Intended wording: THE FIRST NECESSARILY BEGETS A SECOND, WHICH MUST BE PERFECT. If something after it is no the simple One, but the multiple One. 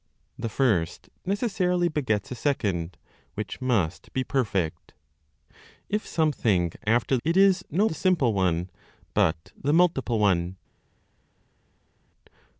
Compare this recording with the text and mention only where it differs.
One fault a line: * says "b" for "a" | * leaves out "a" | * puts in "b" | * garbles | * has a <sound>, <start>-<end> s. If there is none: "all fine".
all fine